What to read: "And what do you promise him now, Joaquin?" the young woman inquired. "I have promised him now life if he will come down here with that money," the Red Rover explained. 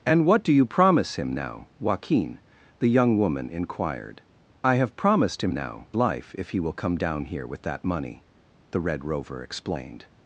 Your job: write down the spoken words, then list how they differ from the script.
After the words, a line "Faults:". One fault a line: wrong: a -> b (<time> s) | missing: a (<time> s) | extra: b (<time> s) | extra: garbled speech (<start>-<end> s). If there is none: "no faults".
"And what do you promise him now, Joaquin?" the young woman inquired. "I have promised him now life if he will come down here with that money," the Red Rover explained.
Faults:
no faults